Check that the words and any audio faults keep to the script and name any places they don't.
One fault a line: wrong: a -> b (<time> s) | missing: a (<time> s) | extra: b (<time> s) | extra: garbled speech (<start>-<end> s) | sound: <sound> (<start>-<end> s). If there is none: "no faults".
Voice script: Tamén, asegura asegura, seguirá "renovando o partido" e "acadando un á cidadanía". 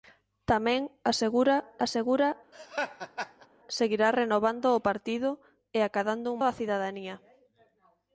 sound: laugh (2.5-3.5 s)